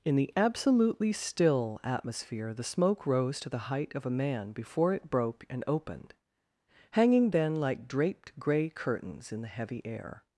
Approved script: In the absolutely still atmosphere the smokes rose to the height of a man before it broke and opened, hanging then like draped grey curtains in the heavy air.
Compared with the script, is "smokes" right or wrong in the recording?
wrong